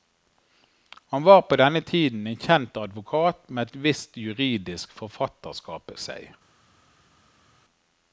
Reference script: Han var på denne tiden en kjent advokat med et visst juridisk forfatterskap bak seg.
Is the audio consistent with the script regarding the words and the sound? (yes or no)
no